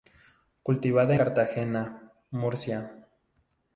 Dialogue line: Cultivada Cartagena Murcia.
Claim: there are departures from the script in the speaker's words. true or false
false